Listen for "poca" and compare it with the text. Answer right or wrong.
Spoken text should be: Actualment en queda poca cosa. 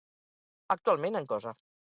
wrong